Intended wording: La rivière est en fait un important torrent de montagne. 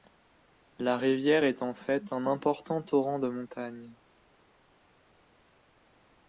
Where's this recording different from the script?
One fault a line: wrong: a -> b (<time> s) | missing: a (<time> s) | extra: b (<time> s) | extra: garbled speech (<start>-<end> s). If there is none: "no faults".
no faults